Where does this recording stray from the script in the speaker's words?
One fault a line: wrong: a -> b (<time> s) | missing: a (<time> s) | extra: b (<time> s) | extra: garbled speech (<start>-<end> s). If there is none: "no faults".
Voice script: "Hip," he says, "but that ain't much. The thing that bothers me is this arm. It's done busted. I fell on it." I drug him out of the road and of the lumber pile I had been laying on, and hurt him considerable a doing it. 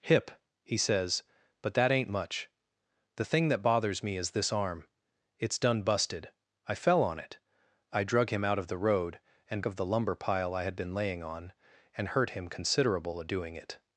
no faults